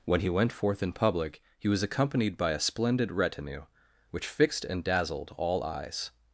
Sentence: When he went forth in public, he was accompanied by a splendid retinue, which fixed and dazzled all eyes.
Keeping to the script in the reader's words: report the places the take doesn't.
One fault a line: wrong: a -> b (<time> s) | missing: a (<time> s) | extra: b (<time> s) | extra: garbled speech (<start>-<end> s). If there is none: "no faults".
no faults